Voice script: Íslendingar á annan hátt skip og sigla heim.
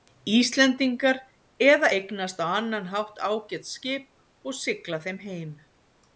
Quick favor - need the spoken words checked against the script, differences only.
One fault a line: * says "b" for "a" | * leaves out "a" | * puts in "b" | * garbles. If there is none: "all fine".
* puts in "eða eignast"
* puts in "ágæt"
* puts in "þeim"